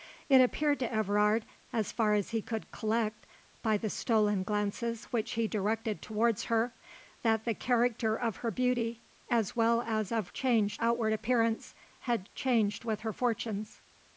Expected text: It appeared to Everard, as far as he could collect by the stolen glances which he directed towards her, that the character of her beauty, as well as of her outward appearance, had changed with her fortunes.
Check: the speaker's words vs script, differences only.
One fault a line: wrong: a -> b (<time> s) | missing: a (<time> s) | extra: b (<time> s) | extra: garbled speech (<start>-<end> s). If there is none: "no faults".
wrong: her -> changed (10.3 s)